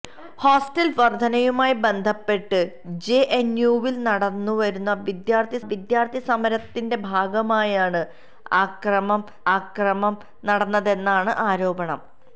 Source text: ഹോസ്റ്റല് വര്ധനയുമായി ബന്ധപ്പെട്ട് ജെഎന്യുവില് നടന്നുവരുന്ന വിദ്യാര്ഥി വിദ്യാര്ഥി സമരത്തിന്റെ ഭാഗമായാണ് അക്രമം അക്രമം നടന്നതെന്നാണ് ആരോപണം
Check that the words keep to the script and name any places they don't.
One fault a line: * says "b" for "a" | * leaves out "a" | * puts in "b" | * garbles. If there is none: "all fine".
all fine